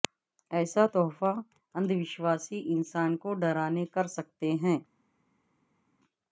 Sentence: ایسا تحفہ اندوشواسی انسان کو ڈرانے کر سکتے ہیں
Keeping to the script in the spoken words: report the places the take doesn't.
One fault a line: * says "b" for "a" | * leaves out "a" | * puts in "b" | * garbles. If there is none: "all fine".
all fine